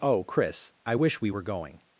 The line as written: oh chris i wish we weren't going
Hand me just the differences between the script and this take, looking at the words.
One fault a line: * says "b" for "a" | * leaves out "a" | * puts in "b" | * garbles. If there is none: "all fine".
* says "were" for "weren't"